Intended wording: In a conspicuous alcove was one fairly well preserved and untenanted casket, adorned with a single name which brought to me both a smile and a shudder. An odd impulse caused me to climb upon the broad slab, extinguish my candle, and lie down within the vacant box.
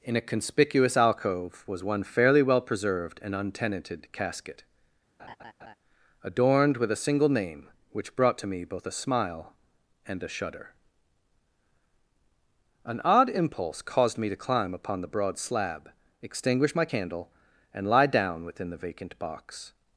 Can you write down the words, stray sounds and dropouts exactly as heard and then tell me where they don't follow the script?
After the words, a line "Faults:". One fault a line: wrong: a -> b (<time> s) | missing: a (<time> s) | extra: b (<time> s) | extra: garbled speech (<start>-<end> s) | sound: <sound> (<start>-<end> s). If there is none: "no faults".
In a conspicuous alcove was one fairly well preserved and untenanted casket, adorned with a single name which brought to me both a smile and a shudder. An odd impulse caused me to climb upon the broad slab, extinguish my candle, and lie down within the vacant box.
Faults:
sound: laugh (5.2-5.8 s)